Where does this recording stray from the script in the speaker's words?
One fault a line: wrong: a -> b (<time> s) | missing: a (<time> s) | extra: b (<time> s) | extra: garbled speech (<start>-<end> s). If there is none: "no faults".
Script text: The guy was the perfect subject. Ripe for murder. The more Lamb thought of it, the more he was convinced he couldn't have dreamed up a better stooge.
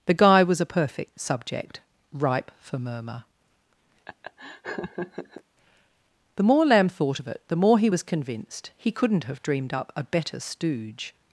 wrong: the -> a (0.6 s)
wrong: murder -> murmur (2.8 s)